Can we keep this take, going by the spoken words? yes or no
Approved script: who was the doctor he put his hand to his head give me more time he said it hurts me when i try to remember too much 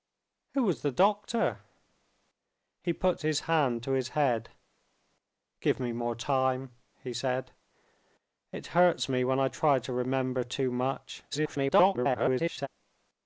no